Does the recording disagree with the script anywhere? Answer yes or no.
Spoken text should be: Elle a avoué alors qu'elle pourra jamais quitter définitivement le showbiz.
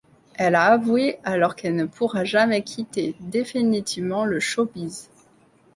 yes